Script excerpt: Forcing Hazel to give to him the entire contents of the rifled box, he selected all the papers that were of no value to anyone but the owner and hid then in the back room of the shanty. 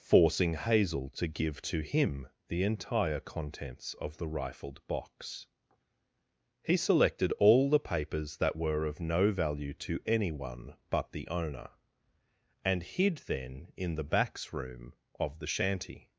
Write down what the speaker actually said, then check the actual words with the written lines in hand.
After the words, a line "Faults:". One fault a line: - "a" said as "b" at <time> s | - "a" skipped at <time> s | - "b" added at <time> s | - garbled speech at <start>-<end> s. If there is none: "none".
Forcing Hazel to give to him the entire contents of the rifled box, he selected all the papers that were of no value to anyone but the owner and hid then in the backs room of the shanty.
Faults:
- "back" said as "backs" at 14.0 s